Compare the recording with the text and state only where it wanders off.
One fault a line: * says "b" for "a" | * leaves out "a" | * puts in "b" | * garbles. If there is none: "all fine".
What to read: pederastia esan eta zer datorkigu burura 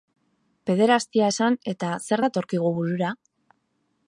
all fine